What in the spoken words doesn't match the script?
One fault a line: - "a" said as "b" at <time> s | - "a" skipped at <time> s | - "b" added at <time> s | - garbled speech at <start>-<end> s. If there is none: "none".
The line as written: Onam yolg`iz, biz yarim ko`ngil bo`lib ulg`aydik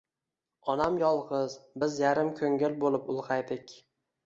none